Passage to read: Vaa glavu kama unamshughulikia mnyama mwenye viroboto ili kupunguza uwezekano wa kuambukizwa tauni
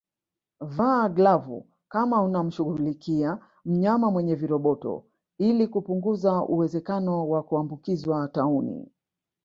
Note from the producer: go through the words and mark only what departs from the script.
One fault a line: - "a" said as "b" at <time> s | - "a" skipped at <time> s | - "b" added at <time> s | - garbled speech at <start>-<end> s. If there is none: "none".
none